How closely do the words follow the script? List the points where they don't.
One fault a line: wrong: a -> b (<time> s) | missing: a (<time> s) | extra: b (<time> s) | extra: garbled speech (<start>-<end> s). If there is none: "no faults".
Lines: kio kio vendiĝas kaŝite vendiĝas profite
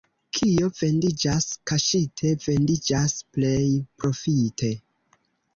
missing: kio (0.7 s)
extra: plej (3.4 s)